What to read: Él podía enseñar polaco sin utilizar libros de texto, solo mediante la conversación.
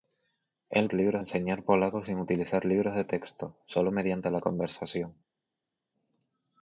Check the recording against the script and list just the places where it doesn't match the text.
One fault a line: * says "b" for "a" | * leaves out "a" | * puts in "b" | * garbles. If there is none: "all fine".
* says "libros" for "podía"